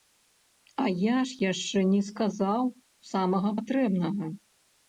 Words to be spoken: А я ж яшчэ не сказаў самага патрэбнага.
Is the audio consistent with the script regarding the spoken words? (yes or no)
yes